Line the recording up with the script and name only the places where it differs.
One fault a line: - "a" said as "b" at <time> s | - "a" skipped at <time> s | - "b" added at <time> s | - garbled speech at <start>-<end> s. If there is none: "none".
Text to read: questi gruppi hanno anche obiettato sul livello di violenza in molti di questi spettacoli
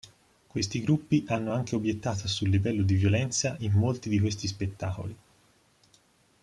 none